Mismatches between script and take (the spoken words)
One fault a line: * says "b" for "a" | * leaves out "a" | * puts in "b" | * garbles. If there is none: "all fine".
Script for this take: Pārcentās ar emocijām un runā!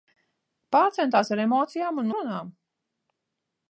all fine